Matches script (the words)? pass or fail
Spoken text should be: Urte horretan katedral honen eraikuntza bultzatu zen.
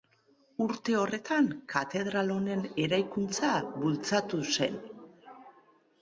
pass